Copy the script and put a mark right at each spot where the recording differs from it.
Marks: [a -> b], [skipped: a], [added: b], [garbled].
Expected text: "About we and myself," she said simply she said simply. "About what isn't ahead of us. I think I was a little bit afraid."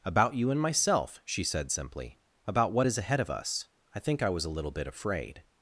"About [we -> you] and myself," she said simply [skipped: she said simply.] "About what [isn't -> is] ahead of us. I think I was a little bit afraid."